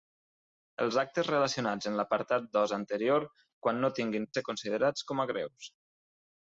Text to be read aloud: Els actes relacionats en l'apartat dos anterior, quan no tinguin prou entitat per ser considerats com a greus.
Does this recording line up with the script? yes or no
no